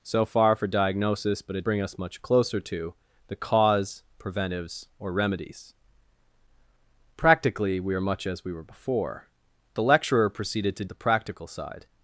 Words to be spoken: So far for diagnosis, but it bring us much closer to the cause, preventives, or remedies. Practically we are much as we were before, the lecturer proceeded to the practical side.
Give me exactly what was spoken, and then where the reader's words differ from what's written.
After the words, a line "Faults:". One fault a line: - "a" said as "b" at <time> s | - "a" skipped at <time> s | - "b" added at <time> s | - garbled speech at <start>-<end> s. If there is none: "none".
So far for diagnosis, but it bring us much closer to the cause, preventives, or remedies. Practically we are much as we were before, the lecturer proceeded to the practical side.
Faults:
none